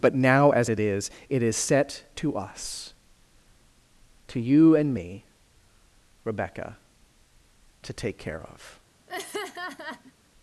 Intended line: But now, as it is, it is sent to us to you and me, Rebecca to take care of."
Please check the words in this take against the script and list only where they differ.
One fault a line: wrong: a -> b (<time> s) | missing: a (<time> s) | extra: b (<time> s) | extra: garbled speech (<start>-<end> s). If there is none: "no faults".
wrong: sent -> set (1.6 s)